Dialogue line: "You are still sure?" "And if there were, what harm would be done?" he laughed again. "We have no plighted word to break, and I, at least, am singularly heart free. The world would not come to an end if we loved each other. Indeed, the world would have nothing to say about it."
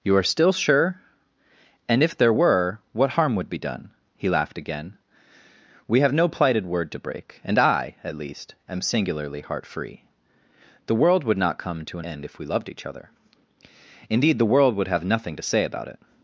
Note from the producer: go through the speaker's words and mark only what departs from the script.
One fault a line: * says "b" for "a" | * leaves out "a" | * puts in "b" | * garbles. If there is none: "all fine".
all fine